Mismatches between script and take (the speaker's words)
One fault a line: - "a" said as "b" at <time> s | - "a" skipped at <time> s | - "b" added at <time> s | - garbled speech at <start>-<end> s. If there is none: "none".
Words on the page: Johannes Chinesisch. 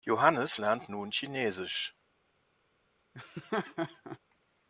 - "lernt nun" added at 0.6 s